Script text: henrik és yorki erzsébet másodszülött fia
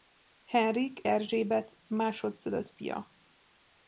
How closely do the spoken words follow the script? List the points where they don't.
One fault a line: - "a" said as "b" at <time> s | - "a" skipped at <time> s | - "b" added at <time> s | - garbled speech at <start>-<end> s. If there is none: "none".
- "és yorki" skipped at 1.0 s